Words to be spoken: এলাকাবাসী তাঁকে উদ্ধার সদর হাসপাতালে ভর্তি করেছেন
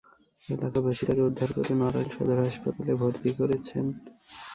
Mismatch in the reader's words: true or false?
true